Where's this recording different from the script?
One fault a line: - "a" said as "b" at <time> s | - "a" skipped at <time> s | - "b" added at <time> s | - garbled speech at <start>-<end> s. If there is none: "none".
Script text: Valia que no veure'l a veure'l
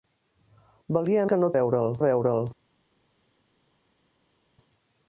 none